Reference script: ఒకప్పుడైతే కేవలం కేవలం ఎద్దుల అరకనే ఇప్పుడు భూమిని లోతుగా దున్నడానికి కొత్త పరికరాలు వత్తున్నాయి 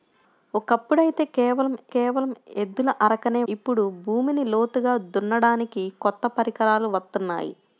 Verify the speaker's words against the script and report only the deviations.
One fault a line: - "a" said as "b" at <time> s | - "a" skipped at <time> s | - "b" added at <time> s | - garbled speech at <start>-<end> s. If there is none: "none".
none